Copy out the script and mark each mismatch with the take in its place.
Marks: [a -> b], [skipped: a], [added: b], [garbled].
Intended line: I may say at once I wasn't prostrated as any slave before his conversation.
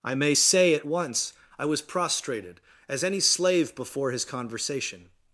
I may say at once I [wasn't -> was] prostrated as any slave before his conversation.